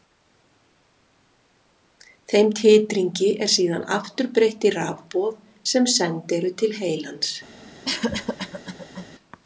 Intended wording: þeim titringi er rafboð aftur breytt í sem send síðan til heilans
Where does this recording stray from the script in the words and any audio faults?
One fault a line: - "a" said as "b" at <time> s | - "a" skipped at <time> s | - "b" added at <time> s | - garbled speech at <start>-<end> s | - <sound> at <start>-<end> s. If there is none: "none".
- "rafboð" said as "síðan" at 3.5 s
- "rafboð" added at 4.8 s
- "síðan" said as "eru" at 6.4 s
- cough at 7.8-9.1 s